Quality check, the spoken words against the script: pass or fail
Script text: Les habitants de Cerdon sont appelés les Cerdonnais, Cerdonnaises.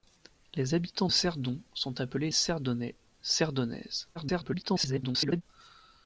fail